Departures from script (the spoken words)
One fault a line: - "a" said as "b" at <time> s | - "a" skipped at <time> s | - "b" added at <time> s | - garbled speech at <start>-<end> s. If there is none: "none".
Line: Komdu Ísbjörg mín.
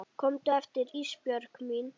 - "aftur" added at 0.6 s